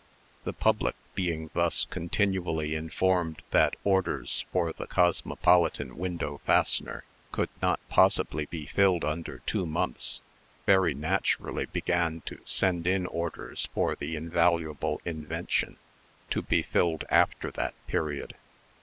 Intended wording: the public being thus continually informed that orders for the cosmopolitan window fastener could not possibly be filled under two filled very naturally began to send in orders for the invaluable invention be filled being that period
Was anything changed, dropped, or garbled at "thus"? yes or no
no